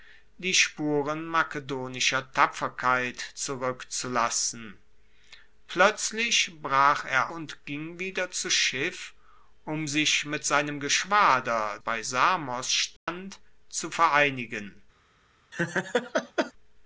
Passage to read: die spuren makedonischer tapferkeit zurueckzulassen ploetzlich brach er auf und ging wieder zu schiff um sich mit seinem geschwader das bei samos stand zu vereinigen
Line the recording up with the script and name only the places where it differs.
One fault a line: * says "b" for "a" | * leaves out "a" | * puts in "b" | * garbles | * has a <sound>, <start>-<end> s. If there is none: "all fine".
* leaves out "auf"
* leaves out "das"
* has a dropout, 13.0-13.1 s
* has a laugh, 15.5-16.5 s